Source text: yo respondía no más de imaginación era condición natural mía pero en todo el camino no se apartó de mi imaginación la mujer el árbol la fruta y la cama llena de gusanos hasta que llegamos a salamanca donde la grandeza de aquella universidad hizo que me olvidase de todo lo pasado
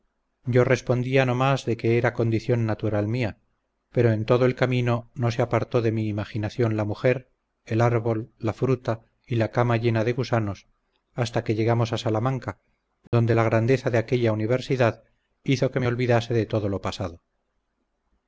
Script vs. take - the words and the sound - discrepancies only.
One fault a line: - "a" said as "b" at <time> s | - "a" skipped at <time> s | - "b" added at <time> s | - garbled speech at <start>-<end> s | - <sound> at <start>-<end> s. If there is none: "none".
- "imaginación" said as "que" at 1.8 s
- dropout at 13.1-13.1 s